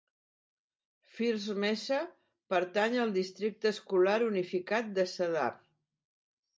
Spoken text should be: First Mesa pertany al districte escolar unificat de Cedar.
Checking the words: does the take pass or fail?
pass